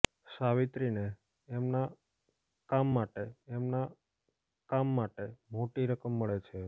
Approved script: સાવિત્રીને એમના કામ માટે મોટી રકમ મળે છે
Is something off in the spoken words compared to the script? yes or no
yes